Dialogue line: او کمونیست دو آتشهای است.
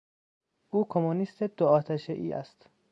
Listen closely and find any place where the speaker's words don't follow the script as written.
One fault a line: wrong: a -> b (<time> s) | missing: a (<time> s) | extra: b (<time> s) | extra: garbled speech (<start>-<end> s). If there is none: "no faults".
no faults